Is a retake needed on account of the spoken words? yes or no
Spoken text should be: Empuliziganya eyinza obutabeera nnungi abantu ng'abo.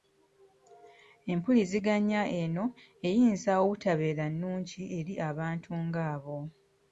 yes